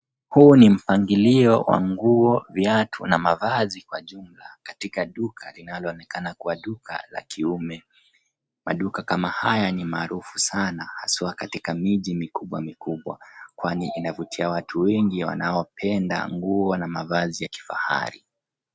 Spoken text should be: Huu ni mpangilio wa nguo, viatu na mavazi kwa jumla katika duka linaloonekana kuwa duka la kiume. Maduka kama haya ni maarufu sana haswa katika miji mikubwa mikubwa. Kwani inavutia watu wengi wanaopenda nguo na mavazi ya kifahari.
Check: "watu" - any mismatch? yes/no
no